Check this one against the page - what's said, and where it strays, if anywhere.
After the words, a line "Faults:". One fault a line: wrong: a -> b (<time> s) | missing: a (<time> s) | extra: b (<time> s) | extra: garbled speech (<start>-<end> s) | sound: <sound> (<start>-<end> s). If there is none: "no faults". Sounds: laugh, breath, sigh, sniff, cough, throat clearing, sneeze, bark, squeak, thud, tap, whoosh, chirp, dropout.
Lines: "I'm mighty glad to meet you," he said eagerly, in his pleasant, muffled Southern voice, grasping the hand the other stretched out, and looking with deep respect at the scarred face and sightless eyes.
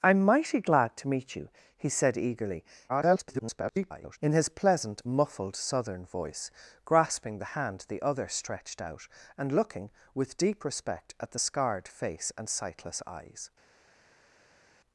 "I'm mighty glad to meet you," he said eagerly, [garbled] in his pleasant, muffled Southern voice, grasping the hand the other stretched out, and looking with deep respect at the scarred face and sightless eyes.
Faults:
extra: garbled speech (2.9-4.2 s)